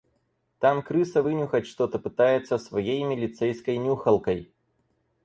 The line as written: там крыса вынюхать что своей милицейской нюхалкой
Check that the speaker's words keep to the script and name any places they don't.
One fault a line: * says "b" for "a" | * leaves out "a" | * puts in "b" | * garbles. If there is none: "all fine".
* puts in "то пытается"